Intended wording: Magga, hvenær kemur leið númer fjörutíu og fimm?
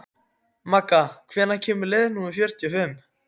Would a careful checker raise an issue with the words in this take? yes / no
no